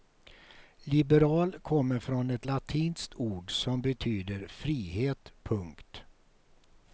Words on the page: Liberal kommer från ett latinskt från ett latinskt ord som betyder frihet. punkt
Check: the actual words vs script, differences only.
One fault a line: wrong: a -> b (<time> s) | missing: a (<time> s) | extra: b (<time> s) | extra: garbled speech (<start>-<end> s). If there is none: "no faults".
missing: från ett latinskt (3.1 s)